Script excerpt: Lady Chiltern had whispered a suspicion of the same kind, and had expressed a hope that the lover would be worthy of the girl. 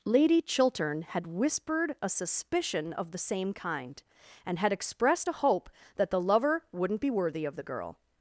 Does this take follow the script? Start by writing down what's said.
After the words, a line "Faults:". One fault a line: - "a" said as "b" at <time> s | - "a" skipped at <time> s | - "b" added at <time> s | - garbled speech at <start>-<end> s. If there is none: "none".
Lady Chiltern had whispered a suspicion of the same kind, and had expressed a hope that the lover wouldn't be worthy of the girl.
Faults:
- "would" said as "wouldn't" at 6.7 s